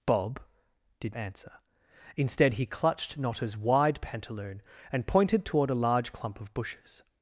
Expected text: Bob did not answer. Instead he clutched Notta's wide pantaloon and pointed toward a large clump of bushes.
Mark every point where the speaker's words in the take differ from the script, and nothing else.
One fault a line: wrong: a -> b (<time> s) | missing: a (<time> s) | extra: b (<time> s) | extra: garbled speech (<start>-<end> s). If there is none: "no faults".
missing: not (1.1 s)